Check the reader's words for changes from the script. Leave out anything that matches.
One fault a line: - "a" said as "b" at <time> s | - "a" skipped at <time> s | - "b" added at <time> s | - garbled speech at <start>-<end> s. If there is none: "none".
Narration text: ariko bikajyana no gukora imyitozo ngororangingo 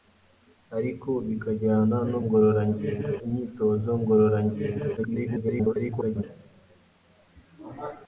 - "gukora" said as "ngororangingo" at 2.2 s
- garbled speech at 5.0-6.2 s